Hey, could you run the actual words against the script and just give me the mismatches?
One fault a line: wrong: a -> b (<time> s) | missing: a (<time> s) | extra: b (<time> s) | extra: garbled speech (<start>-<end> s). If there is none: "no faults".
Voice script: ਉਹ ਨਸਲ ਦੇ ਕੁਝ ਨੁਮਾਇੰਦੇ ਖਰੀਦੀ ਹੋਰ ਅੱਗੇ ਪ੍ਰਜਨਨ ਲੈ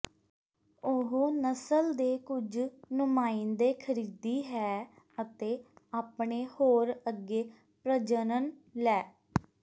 extra: ਹੈ ਅਤੇ ਆਪਣੇ (4.5 s)